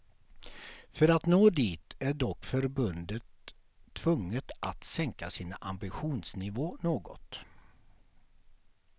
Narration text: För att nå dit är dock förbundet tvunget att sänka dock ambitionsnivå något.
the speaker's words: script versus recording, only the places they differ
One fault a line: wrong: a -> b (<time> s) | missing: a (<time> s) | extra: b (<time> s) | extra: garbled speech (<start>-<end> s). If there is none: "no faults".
wrong: dock -> sin (5.3 s)